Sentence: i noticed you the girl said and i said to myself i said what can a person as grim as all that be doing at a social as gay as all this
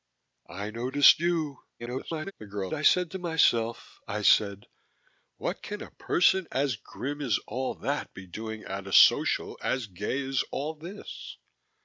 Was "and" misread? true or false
true